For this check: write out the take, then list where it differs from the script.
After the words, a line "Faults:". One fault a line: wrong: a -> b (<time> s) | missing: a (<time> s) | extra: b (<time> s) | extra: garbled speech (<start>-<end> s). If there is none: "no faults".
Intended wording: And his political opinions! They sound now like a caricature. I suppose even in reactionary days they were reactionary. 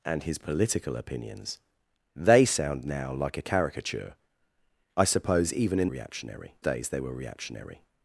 And his political opinions! They sound now like a caricature. I suppose even in reactionary days they were reactionary.
Faults:
no faults